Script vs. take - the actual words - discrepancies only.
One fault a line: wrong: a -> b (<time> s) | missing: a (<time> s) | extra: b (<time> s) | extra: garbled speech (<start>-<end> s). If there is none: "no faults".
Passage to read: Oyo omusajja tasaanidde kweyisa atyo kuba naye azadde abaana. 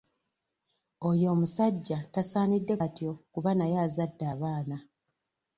missing: kweyisa (2.8 s)